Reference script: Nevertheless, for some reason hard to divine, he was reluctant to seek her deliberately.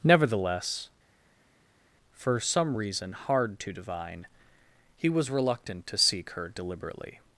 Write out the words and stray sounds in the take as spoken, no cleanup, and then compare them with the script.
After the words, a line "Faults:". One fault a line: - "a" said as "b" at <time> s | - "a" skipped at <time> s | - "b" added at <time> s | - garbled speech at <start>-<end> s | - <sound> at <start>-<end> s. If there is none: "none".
Nevertheless, for some reason hard to divine, he was reluctant to seek her deliberately.
Faults:
none